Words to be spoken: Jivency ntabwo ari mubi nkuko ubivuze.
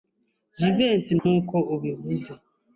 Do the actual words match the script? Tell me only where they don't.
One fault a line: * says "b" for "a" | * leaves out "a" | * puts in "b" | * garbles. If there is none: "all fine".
* leaves out "ntabwo ari mubi"